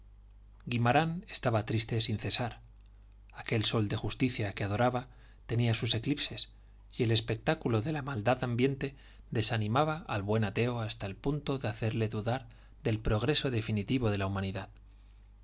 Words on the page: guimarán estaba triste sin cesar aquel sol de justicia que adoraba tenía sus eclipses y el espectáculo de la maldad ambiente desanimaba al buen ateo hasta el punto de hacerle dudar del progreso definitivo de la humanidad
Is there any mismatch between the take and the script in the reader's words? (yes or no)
no